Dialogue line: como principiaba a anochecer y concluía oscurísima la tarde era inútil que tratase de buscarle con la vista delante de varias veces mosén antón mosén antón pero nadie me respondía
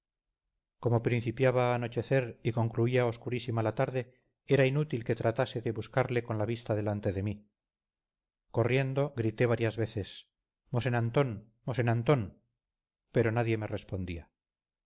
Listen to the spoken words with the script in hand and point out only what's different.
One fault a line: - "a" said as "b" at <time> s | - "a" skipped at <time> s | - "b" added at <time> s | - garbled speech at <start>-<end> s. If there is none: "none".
- "mí corriendo grité" added at 7.2 s